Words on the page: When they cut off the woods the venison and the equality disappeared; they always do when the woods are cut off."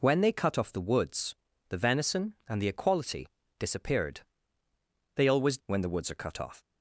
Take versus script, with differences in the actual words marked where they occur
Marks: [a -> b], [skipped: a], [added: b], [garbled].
When they cut off the woods the venison and the equality disappeared; they always [skipped: do] when the woods are cut off."